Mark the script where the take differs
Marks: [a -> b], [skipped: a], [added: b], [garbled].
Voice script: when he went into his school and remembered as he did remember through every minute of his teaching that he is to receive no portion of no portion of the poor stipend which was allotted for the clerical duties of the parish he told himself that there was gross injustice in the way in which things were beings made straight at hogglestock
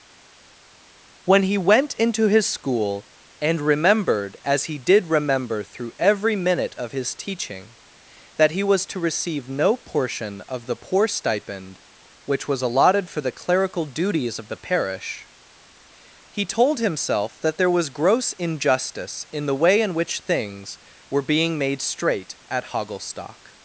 when he went into his school and remembered as he did remember through every minute of his teaching that he [is -> was] to receive no portion of [skipped: no portion of] the poor stipend which was allotted for the clerical duties of the parish he told himself that there was gross injustice in the way in which things were [beings -> being] made straight at hogglestock